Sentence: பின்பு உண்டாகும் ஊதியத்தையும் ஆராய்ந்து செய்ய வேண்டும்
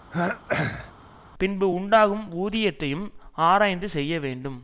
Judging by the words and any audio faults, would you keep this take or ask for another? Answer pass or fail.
fail